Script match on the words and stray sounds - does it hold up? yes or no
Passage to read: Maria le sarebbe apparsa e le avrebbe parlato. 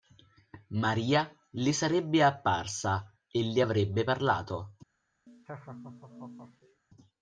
no